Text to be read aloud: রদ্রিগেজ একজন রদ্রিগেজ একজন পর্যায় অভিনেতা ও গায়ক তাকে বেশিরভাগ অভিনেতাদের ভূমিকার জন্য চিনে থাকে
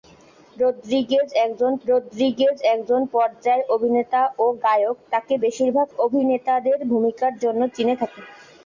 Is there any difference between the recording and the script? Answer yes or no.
no